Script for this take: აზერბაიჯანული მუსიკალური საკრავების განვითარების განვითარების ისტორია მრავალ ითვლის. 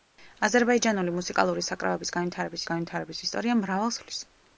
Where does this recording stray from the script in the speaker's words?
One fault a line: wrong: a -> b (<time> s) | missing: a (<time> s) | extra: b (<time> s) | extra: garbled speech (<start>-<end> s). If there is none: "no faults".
no faults